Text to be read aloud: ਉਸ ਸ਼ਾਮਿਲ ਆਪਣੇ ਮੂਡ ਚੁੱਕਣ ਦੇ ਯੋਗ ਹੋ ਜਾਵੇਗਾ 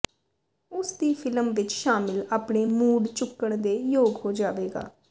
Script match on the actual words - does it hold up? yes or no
no